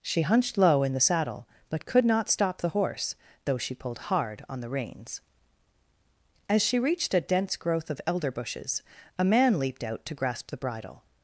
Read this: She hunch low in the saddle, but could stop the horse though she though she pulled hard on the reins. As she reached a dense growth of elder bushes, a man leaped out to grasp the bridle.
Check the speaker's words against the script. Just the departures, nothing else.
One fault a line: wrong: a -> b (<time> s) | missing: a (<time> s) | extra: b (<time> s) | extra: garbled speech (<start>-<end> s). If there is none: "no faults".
wrong: hunch -> hunched (0.2 s)
extra: not (2.0 s)
missing: though she (3.7 s)